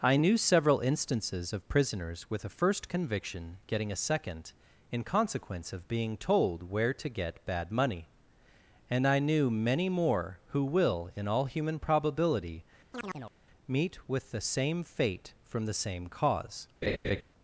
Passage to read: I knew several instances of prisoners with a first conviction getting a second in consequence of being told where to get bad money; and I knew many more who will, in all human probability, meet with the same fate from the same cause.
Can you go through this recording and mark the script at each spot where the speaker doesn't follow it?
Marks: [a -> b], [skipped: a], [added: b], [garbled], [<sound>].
I knew several instances of prisoners with a first conviction getting a second in consequence of being told where to get bad money; and I knew many more who will, in all human probability, [chirp] meet with the same fate from the same cause. [laugh]